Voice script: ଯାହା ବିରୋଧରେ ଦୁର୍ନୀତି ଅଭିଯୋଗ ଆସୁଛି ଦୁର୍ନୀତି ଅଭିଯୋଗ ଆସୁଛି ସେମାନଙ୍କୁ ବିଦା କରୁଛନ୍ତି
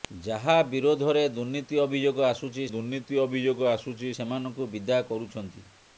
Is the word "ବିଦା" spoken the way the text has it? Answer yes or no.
yes